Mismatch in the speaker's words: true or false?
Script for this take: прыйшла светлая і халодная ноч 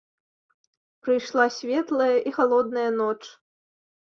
false